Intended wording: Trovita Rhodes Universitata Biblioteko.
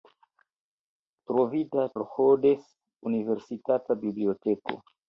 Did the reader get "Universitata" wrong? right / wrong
right